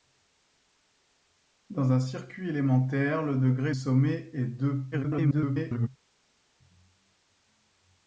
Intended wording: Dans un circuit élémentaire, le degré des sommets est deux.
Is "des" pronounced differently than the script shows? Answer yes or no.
yes